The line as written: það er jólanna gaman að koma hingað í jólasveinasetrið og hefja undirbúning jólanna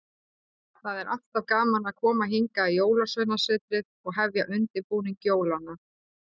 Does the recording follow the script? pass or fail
fail